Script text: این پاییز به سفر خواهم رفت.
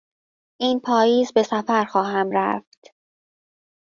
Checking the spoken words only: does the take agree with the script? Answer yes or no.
yes